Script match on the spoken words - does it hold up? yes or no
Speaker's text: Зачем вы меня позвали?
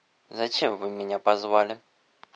yes